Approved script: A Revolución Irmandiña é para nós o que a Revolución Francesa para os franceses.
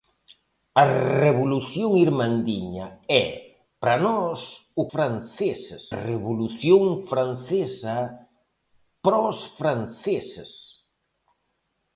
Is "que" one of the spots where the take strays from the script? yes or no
yes